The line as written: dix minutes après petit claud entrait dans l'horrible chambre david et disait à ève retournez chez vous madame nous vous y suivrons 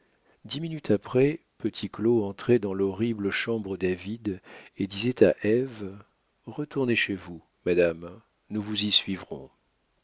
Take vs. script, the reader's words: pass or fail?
pass